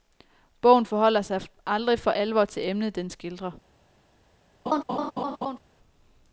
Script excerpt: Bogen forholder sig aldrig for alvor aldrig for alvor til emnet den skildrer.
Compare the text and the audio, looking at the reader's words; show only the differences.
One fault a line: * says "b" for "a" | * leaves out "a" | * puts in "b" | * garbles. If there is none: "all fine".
* leaves out "aldrig for alvor"